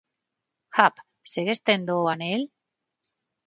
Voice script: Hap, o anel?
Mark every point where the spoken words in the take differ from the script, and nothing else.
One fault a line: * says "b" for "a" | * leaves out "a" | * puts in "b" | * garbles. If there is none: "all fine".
* puts in "segues tendo"